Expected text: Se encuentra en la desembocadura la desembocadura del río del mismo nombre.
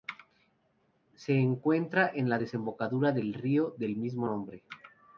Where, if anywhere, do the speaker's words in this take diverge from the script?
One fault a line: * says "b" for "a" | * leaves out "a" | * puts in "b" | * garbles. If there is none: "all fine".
* leaves out "la desembocadura"